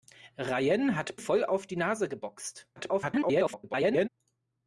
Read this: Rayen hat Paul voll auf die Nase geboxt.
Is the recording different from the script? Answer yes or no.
yes